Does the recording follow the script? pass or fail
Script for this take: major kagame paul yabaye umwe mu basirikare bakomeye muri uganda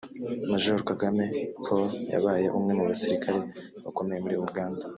pass